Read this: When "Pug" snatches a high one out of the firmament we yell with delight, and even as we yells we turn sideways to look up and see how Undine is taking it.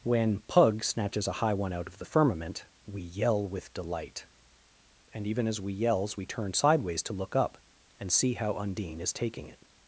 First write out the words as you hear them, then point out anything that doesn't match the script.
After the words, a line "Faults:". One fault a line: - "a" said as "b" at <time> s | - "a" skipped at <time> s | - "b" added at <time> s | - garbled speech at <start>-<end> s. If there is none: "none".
When "Pug" snatches a high one out of the firmament we yell with delight, and even as we yells we turn sideways to look up and see how Undine is taking it.
Faults:
none